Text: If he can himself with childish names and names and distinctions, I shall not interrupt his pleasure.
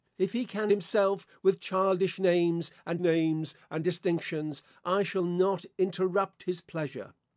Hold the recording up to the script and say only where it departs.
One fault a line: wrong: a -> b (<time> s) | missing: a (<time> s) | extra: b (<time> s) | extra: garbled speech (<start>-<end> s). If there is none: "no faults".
no faults